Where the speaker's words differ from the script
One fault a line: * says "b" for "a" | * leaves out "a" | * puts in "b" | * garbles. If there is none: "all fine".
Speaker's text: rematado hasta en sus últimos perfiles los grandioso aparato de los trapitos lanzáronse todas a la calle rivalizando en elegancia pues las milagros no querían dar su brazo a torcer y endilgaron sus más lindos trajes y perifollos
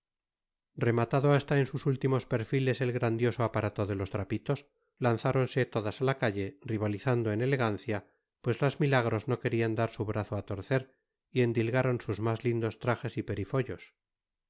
* says "el" for "los"